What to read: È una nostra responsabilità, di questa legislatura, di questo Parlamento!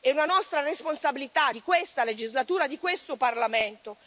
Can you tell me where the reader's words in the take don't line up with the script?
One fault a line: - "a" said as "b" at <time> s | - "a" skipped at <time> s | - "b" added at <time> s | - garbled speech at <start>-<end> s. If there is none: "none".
none